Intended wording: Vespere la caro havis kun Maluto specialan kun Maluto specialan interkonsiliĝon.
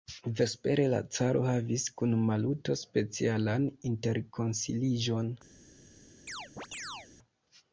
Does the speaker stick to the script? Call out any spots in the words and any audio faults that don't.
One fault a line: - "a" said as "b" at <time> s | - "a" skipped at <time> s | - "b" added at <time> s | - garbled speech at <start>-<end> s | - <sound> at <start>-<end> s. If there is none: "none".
- "kun Maluto specialan" skipped at 3.7 s
- chirp at 6.3-7.1 s